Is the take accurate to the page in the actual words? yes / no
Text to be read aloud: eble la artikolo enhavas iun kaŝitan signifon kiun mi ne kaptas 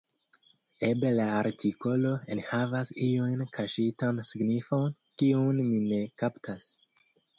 yes